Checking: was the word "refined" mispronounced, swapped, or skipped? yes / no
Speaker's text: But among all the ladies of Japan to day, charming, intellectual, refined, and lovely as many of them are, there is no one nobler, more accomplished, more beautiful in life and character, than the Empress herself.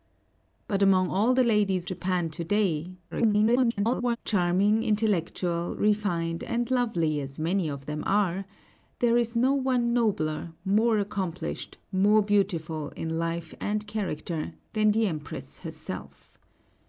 no